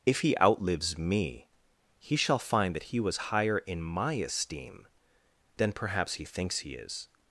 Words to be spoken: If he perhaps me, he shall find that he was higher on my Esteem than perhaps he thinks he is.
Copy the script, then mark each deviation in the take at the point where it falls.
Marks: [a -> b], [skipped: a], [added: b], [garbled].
If he [perhaps -> outlives] me, he shall find that he was higher [on -> in] my Esteem than perhaps he thinks he is.